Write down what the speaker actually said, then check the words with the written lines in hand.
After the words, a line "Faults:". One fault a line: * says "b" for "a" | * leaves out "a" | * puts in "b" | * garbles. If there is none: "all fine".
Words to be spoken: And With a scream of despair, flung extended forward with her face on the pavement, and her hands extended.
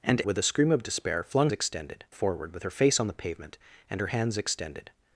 And With a scream of despair, flung extended forward with her face on the pavement, and her hands extended.
Faults:
all fine